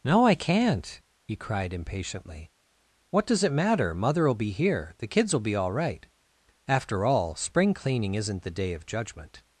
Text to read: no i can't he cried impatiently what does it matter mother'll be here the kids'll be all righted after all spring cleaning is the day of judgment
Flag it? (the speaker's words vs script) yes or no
yes